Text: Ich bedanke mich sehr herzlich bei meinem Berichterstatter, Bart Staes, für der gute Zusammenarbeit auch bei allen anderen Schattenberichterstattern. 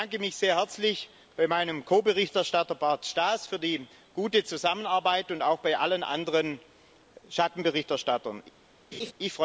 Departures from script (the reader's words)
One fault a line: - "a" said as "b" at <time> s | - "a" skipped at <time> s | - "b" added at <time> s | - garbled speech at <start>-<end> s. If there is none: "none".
- "Ko" added at 1.9 s
- "der" said as "die" at 3.6 s
- "und" added at 5.3 s